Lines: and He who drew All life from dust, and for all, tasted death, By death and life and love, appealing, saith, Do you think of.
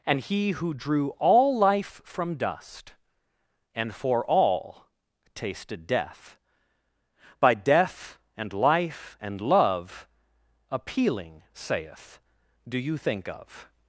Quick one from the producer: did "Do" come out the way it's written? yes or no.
yes